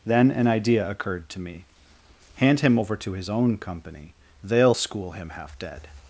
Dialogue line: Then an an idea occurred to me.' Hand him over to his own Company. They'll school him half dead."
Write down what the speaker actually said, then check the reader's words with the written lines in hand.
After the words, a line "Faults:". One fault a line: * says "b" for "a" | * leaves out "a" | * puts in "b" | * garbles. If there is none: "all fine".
Then an idea occurred to me.' Hand him over to his own Company. They'll school him half dead."
Faults:
* leaves out "an"